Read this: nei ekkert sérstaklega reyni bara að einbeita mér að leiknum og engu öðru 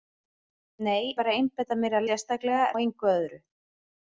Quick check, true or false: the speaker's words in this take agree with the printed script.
false